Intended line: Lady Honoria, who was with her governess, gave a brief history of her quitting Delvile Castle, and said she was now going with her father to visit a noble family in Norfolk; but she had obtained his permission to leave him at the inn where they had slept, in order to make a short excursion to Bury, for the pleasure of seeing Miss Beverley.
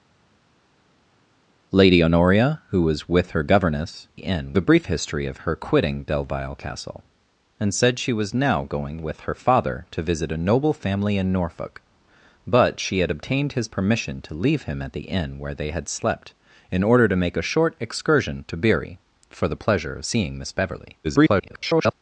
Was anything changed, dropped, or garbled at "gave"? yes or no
yes